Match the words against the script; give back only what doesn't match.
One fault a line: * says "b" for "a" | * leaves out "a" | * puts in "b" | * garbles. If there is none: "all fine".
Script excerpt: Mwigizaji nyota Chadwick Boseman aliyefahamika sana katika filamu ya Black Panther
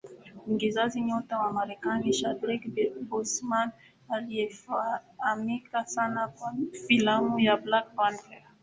* puts in "wa Marekani"
* says "kwa" for "katika"